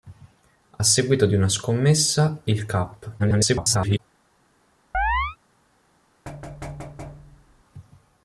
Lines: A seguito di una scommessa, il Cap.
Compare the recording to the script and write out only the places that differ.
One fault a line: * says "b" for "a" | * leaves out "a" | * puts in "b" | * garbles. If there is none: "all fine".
* garbles